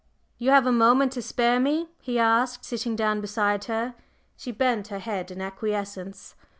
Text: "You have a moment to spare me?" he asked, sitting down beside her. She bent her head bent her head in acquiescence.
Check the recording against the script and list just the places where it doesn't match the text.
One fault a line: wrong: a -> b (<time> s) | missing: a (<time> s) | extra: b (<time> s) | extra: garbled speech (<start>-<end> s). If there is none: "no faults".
missing: bent her head (5.3 s)